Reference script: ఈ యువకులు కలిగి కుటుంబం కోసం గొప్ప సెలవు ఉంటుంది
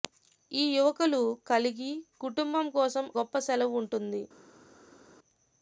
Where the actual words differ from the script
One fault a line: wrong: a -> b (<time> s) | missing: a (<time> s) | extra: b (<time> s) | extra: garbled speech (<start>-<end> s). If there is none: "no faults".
no faults